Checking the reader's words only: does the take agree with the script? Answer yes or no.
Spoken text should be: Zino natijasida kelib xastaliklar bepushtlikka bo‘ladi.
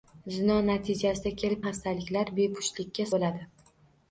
yes